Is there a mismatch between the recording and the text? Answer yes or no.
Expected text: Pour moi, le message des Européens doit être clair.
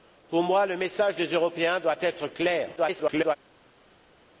yes